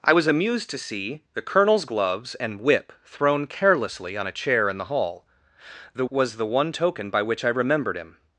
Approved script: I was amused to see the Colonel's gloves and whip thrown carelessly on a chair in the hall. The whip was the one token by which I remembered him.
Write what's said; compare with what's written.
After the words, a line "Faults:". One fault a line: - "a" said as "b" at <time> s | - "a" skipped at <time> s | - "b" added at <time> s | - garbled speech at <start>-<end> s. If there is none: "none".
I was amused to see the Colonel's gloves and whip thrown carelessly on a chair in the hall. The was the one token by which I remembered him.
Faults:
- "whip" skipped at 6.0 s